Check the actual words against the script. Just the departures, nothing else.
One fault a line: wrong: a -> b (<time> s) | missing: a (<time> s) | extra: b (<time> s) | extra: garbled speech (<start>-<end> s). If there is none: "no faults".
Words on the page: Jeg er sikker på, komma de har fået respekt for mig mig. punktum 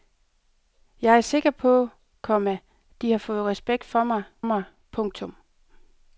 no faults